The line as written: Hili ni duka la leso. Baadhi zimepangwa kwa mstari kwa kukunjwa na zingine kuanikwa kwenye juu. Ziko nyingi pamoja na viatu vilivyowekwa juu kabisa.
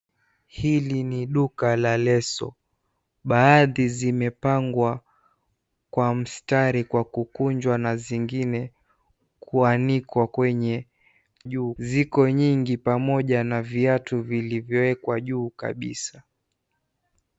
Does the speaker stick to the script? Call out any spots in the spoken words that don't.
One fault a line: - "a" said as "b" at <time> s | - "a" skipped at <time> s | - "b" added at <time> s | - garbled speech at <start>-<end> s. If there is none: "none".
none